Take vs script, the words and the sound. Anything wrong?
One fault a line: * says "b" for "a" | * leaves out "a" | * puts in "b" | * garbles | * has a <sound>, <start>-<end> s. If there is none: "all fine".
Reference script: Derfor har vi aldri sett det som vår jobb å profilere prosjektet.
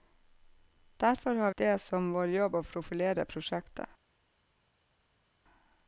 * leaves out "vi aldri sett"